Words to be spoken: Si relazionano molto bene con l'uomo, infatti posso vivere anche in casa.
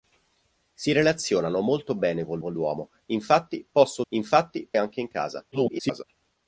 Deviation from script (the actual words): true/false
true